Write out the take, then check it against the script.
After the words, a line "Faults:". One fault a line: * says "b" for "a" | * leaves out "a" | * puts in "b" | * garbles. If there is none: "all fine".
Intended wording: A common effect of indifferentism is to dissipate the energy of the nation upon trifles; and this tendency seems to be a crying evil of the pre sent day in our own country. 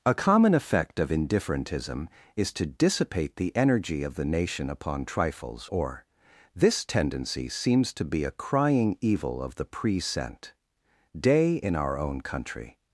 A common effect of indifferentism is to dissipate the energy of the nation upon trifles; or this tendency seems to be a crying evil of the pre sent day in our own country.
Faults:
* says "or" for "and"